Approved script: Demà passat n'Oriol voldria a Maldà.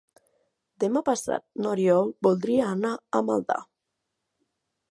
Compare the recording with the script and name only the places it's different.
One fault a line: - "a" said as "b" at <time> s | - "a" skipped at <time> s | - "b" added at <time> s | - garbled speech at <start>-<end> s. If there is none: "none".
- "anar" added at 2.8 s